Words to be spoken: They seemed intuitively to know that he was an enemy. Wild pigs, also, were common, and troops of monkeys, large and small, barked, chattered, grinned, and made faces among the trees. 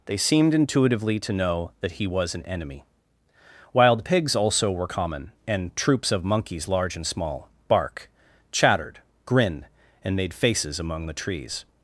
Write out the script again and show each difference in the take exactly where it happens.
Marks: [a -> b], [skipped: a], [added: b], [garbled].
They seemed intuitively to know that he was an enemy. Wild pigs, also, were common, and troops of monkeys, large and small, [barked, -> bark] chattered, grinned, and made faces among the trees.